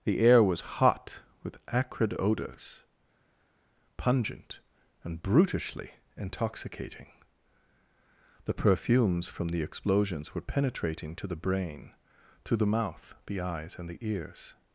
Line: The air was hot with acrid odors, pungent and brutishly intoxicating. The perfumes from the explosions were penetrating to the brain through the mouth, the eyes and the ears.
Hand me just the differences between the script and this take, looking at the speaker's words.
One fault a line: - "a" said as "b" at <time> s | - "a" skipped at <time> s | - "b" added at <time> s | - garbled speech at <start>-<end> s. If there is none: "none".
- "through" said as "to" at 12.4 s